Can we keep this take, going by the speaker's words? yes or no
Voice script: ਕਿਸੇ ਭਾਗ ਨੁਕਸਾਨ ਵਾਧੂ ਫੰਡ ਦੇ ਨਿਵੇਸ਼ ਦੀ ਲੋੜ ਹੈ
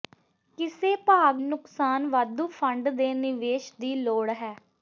yes